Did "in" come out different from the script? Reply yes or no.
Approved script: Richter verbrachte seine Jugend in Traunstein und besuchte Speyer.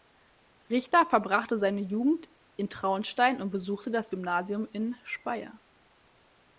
no